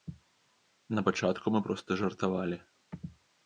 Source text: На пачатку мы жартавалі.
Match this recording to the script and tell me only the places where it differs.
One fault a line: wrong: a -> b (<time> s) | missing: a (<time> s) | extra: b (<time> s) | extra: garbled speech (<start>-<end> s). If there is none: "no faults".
extra: проста (1.6 s)